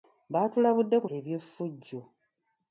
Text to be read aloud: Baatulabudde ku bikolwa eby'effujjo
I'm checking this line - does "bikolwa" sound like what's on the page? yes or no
no